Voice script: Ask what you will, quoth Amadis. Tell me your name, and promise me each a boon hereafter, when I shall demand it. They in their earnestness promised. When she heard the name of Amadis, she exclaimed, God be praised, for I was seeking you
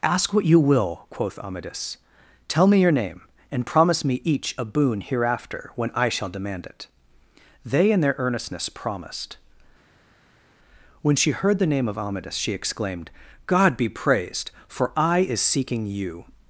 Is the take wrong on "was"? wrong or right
wrong